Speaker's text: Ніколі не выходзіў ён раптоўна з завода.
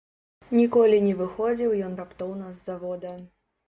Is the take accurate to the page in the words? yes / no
yes